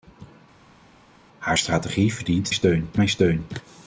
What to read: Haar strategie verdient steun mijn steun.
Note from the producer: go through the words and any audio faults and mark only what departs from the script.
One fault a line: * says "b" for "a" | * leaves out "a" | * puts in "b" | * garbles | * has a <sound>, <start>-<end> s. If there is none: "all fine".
all fine